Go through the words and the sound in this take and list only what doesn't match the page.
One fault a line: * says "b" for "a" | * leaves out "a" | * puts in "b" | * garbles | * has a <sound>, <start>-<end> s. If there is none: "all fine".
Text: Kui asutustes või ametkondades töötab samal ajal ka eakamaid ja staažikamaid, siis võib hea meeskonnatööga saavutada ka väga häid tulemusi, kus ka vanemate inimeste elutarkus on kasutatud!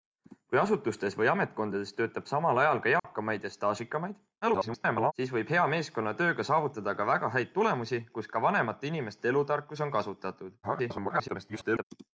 * has a dropout, 3.0-3.0 s
* garbles
* garbles